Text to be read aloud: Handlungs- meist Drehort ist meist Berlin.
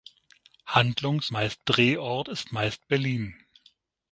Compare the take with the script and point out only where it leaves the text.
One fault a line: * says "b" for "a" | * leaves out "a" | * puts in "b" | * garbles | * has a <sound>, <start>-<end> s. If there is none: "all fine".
all fine